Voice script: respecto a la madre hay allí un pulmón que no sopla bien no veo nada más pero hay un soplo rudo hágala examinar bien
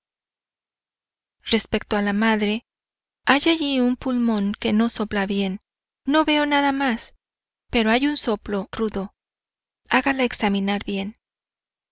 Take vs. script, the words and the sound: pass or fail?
pass